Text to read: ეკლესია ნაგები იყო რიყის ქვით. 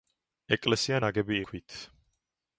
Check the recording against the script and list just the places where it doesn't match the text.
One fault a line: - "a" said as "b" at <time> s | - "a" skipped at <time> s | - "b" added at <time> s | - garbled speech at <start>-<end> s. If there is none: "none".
- "იყო რიყის" skipped at 1.4 s